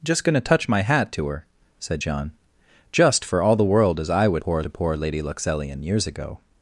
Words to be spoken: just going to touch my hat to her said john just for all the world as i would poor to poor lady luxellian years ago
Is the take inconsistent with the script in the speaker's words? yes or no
no